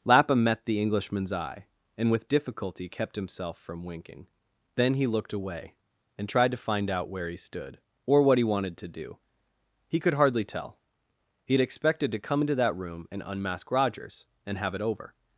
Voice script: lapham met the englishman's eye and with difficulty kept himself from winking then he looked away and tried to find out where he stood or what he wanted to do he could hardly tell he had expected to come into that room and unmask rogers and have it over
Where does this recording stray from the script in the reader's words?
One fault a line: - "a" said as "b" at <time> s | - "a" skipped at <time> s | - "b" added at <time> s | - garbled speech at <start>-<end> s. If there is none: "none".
none